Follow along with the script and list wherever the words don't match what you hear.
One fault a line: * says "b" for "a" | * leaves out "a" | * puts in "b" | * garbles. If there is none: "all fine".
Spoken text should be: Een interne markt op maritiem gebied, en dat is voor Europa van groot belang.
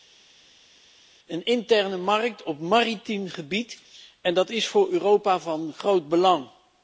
all fine